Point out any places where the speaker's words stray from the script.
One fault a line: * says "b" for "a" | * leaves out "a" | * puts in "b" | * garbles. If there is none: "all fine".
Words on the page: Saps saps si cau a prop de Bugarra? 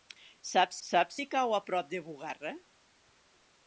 all fine